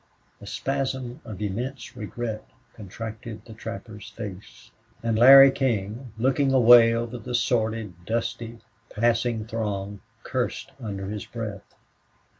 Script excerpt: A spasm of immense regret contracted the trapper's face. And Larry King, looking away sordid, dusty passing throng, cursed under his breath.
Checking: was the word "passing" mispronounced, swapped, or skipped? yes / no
no